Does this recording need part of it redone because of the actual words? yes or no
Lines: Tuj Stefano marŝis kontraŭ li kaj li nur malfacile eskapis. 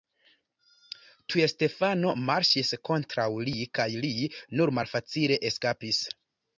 no